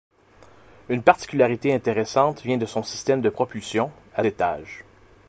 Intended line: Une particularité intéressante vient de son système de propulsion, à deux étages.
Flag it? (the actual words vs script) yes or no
yes